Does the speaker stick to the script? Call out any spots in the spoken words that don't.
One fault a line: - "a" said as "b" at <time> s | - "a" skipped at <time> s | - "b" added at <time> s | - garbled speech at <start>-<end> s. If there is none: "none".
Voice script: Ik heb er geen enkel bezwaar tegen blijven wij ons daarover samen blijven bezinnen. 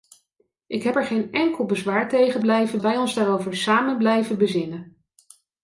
none